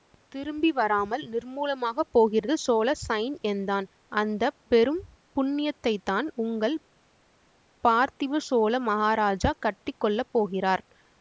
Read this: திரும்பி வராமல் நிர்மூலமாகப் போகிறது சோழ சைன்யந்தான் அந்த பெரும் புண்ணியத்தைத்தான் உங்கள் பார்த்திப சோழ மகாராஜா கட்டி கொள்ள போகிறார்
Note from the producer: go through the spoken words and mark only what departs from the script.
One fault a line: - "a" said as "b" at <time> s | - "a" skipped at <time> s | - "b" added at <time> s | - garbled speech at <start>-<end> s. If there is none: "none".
none